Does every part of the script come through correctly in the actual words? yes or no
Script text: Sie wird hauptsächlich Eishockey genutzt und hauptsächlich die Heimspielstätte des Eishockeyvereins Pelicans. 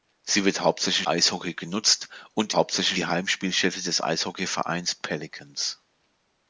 yes